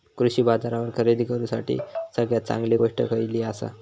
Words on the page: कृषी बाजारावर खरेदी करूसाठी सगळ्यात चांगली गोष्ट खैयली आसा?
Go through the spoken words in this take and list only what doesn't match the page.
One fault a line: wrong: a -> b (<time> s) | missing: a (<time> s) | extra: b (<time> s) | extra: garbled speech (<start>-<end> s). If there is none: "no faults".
no faults